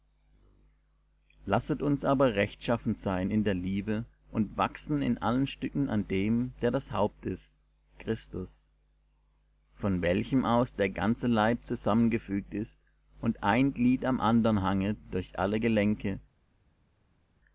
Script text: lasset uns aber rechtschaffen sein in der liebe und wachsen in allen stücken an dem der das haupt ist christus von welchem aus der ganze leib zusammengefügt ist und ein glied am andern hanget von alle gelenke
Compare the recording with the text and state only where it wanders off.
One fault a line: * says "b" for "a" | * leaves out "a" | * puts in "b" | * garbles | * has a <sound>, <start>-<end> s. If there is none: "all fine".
* says "durch" for "von"